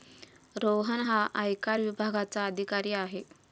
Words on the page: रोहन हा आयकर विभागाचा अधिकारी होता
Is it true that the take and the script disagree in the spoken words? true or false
true